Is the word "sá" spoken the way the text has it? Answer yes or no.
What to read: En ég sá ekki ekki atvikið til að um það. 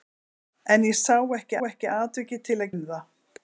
yes